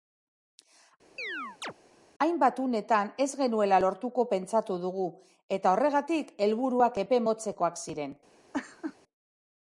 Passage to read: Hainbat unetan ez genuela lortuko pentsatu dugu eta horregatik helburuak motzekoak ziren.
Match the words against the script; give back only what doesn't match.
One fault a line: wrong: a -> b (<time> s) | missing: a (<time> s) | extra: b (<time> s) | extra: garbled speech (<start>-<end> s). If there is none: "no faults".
extra: epe (7.0 s)